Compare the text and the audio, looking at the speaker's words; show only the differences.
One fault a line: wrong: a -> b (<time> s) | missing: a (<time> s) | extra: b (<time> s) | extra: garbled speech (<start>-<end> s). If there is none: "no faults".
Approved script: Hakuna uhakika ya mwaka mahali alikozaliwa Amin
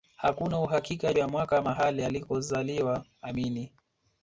no faults